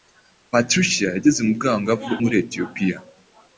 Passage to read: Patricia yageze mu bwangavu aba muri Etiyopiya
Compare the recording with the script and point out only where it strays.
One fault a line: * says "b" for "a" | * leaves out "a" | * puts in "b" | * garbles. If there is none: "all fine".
* leaves out "aba"